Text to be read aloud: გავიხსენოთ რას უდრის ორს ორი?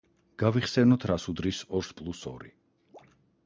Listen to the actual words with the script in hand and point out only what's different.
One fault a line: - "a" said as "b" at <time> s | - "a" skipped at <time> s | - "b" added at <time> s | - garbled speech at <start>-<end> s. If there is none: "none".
- "პლუს" added at 2.0 s